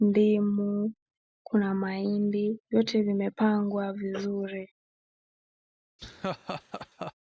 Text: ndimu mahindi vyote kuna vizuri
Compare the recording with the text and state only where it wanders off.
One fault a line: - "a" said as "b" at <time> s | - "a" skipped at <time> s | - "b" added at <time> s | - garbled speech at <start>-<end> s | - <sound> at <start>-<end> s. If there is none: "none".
- "kuna" added at 1.4 s
- "kuna" said as "vimepangwa" at 3.0 s
- laugh at 6.0-7.1 s